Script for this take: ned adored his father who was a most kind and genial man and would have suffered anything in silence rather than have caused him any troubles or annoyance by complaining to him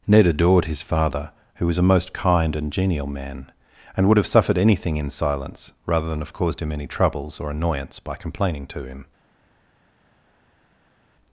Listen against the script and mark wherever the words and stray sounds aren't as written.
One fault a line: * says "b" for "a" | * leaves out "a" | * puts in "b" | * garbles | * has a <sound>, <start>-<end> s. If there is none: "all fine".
all fine